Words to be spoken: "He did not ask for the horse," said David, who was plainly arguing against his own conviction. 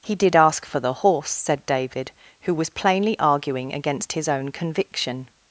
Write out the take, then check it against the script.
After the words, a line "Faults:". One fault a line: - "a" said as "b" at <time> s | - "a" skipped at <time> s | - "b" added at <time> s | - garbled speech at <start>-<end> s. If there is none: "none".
"He did ask for the horse," said David, who was plainly arguing against his own conviction.
Faults:
- "not" skipped at 0.3 s